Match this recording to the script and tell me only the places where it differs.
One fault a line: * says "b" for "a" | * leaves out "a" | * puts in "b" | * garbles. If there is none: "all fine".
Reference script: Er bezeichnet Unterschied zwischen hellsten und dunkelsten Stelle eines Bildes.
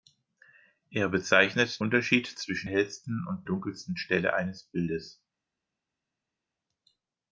all fine